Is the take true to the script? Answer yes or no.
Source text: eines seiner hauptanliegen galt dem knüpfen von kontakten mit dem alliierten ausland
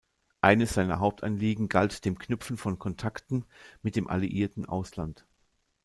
yes